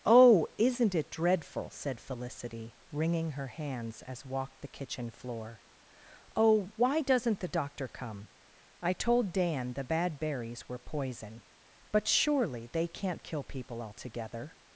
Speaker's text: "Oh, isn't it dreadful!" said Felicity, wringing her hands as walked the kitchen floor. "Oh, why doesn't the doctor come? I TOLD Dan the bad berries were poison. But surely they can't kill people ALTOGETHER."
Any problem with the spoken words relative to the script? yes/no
no